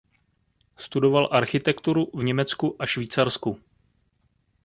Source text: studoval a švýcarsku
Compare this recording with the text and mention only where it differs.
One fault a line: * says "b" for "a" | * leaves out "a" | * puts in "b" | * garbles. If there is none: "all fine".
* puts in "architekturu v německu"